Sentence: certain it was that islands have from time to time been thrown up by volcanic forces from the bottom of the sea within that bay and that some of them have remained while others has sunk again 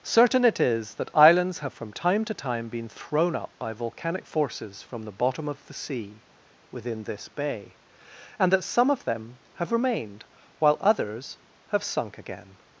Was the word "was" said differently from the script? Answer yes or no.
yes